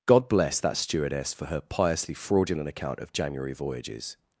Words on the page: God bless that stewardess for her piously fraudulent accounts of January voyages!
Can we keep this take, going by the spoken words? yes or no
no